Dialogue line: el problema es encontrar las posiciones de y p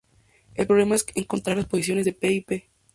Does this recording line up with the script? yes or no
no